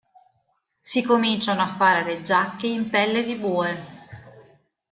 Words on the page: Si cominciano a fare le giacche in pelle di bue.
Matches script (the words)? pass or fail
pass